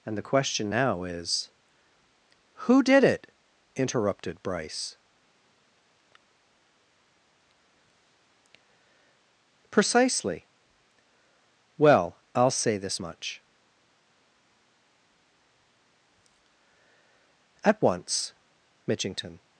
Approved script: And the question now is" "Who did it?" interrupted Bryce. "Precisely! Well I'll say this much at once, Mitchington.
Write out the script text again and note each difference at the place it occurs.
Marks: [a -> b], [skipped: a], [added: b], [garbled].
And the question now is" "Who did it?" interrupted Bryce. "Precisely! Well I'll say this much at once, Mitchington.